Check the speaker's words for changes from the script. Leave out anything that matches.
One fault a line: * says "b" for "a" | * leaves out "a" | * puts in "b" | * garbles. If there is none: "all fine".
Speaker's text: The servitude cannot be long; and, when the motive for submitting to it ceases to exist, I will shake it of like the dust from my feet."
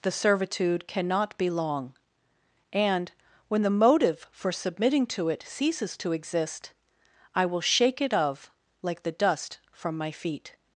all fine